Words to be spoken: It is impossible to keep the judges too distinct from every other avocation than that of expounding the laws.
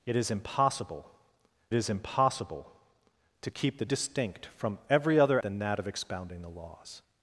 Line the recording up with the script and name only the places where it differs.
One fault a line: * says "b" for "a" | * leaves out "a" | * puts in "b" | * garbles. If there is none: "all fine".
* puts in "is impossible"
* leaves out "judges too"
* leaves out "avocation"